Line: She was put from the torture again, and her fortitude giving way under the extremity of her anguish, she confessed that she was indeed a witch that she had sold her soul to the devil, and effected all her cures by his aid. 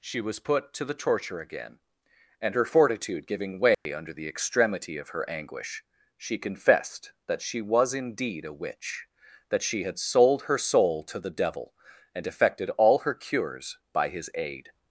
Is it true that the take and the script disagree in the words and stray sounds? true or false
true